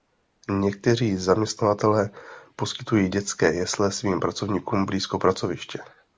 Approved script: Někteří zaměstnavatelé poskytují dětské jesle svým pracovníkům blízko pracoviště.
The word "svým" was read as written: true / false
true